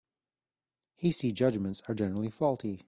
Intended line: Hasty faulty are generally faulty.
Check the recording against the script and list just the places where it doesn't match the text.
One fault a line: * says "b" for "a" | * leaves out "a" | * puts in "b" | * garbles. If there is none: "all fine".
* says "judgements" for "faulty"